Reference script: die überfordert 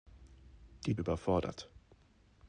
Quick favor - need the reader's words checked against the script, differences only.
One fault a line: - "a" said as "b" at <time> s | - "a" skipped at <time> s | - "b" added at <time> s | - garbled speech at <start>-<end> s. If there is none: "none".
none